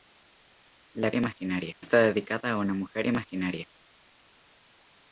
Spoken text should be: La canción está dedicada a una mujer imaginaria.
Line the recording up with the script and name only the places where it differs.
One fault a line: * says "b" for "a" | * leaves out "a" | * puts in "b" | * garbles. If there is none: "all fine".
* says "imaginaria" for "canción"